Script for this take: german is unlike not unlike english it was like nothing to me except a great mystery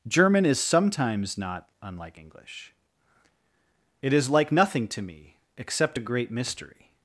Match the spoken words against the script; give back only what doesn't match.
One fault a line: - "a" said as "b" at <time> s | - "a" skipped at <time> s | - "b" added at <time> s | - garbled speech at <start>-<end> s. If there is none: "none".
- "unlike" said as "sometimes" at 0.6 s
- "was" said as "is" at 4.1 s